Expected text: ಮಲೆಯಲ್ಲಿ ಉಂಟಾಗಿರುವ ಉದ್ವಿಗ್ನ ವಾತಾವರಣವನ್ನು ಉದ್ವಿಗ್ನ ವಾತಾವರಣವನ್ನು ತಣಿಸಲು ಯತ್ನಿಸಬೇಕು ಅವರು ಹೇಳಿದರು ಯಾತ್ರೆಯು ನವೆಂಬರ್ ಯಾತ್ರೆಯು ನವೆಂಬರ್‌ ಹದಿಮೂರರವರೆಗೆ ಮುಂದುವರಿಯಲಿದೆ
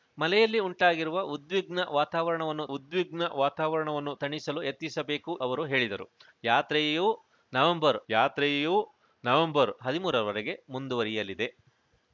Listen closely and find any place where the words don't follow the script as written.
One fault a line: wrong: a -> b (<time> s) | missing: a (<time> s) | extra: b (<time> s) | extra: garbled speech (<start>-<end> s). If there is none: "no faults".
no faults